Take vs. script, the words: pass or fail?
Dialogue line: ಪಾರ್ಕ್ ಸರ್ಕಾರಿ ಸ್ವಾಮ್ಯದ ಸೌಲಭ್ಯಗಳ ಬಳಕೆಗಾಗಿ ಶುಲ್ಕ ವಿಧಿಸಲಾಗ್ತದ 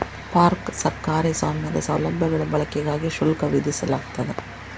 pass